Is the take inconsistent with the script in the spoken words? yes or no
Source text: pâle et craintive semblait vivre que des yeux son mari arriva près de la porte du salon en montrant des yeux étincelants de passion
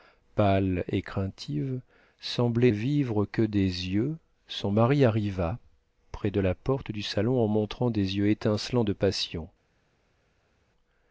no